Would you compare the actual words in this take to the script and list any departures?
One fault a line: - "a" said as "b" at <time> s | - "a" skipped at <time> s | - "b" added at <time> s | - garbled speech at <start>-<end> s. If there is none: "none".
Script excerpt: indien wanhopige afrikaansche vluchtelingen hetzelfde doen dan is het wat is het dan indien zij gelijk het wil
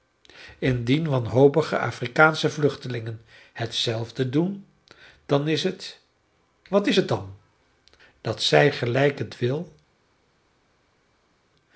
- "indien" said as "dat" at 8.2 s